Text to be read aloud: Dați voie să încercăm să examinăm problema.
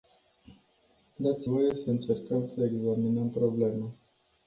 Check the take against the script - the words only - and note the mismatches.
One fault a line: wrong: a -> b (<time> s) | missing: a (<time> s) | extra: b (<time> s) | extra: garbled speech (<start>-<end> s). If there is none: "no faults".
no faults